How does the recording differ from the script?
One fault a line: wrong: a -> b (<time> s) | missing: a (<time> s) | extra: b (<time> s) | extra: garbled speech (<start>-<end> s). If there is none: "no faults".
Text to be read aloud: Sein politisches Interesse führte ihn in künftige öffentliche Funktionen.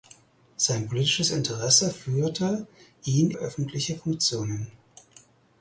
missing: in künftige (3.3 s)